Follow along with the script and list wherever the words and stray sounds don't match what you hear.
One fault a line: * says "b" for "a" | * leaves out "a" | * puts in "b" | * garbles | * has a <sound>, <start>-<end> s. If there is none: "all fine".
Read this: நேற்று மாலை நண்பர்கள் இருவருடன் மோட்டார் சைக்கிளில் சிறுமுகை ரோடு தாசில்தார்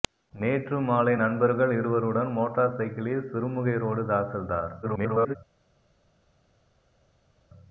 * garbles